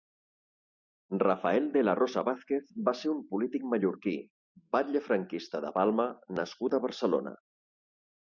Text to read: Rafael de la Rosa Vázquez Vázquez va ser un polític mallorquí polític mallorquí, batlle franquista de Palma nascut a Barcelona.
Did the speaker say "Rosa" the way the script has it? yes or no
yes